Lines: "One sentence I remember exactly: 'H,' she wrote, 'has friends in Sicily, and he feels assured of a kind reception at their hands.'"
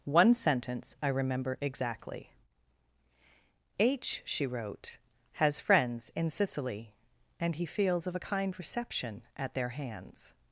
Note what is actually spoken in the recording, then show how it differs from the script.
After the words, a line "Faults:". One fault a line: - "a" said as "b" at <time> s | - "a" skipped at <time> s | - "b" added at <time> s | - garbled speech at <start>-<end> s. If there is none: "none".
"One sentence I remember exactly: 'H,' she wrote, 'has friends in Sicily, and he feels of a kind reception at their hands.'"
Faults:
- "assured" skipped at 8.1 s